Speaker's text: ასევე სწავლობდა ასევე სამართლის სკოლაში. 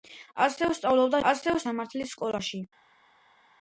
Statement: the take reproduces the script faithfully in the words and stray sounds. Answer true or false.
true